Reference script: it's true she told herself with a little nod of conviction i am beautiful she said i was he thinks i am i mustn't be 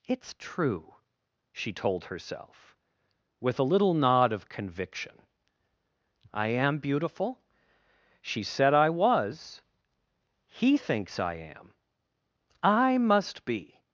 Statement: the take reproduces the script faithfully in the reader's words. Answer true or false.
false